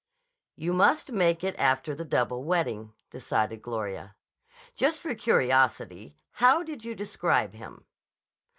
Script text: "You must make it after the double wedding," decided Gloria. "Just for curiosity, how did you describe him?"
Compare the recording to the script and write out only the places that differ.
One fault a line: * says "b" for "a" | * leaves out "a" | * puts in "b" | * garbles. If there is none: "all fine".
all fine